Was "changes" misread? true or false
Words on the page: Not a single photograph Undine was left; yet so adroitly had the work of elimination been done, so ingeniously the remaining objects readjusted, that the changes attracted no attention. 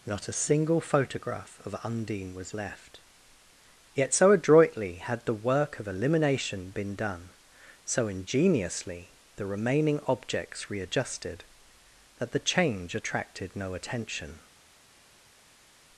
true